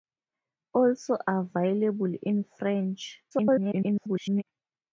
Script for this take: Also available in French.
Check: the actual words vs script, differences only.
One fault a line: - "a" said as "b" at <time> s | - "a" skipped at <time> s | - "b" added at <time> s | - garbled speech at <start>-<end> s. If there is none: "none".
- garbled speech at 3.3-4.4 s